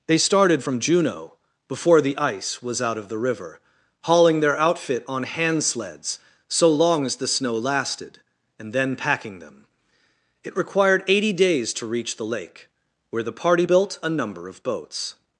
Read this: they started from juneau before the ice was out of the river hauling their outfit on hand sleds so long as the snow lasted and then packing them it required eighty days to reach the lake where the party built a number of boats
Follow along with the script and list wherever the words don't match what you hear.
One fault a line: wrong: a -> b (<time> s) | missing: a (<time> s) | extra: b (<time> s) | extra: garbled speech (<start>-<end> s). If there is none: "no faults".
no faults